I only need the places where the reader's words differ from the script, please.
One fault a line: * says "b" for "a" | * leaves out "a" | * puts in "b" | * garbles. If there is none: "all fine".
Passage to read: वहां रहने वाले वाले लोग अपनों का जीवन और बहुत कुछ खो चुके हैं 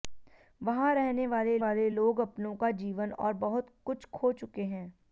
all fine